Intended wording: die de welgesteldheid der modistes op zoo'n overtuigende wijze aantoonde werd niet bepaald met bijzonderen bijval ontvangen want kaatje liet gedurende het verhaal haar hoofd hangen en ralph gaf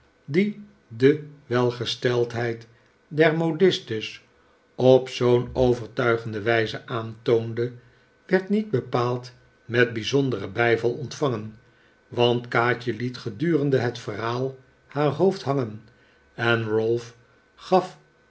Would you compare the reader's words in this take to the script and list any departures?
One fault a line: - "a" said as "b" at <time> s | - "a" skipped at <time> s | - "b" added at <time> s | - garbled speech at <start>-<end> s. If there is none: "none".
none